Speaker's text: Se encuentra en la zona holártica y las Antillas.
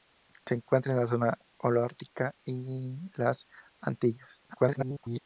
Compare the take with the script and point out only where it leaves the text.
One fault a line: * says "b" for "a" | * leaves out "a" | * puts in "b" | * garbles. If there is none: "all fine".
* garbles